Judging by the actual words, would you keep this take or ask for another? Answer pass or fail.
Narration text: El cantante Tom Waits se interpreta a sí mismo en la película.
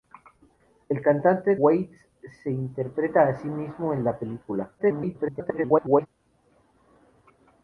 fail